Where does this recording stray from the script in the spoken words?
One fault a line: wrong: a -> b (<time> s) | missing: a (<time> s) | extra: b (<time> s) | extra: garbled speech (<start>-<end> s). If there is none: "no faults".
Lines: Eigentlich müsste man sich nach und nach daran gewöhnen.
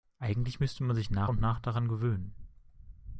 no faults